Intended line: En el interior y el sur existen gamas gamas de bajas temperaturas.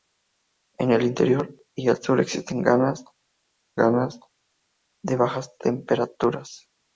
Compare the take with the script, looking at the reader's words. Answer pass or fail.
pass